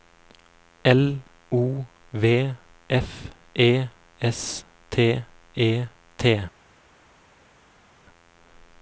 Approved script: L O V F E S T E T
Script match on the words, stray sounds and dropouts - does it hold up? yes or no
yes